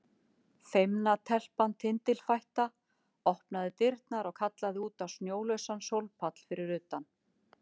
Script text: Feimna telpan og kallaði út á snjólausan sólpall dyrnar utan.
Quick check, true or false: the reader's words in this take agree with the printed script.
false